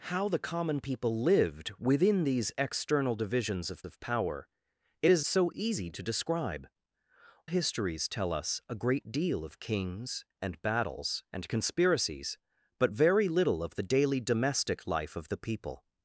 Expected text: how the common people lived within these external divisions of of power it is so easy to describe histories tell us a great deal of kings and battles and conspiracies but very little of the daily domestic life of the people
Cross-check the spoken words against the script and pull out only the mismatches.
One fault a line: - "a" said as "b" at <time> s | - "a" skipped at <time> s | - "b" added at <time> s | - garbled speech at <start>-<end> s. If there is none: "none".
none